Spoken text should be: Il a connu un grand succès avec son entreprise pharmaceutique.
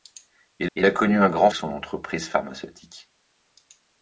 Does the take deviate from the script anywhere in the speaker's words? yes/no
yes